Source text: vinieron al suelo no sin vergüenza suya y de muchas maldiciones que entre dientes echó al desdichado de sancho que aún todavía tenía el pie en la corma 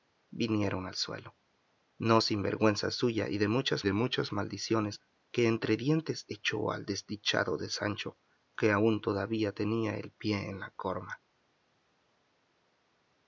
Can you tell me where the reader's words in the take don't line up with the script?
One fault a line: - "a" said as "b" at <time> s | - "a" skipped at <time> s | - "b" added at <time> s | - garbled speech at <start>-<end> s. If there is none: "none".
- "de muchas" added at 3.8 s